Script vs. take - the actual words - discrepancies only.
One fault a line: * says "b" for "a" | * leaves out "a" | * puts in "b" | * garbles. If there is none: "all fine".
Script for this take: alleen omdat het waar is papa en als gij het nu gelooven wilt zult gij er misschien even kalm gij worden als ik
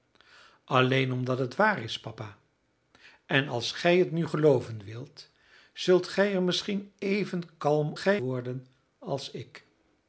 all fine